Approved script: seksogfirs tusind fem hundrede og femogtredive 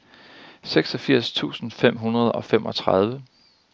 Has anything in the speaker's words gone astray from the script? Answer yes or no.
no